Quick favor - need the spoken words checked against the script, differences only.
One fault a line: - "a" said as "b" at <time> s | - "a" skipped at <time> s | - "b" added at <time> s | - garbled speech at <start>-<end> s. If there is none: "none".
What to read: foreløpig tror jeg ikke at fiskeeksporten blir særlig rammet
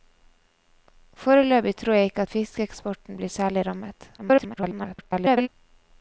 - garbled speech at 4.2-5.5 s